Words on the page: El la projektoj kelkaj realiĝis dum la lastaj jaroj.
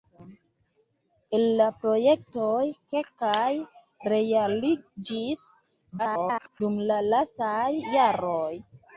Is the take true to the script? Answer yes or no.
no